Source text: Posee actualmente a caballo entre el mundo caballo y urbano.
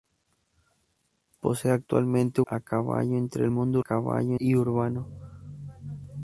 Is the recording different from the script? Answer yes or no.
no